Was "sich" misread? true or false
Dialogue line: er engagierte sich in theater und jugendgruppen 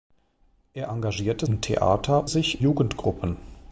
true